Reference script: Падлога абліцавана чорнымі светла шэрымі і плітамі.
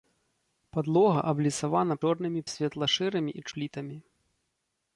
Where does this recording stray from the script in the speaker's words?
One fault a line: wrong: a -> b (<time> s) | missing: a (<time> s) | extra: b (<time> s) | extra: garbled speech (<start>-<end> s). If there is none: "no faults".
no faults